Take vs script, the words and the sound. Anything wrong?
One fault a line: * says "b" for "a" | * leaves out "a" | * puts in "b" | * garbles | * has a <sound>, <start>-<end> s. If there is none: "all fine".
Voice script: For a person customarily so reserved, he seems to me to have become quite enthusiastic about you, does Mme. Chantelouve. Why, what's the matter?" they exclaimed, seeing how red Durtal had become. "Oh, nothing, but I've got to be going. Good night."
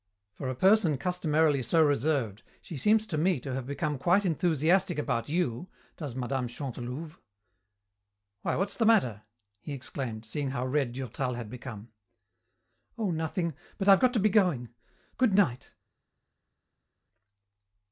* says "she" for "he"
* says "he" for "they"